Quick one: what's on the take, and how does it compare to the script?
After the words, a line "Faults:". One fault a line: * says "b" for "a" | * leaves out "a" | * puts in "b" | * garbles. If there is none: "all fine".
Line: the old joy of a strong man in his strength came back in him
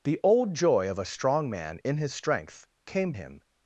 the old joy of a strong man in his strength came him
Faults:
* leaves out "back in"